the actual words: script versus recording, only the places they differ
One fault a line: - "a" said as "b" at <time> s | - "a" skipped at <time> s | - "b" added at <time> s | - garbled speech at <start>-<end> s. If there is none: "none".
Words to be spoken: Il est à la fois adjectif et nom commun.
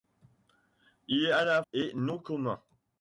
- "fois adjectif" skipped at 1.6 s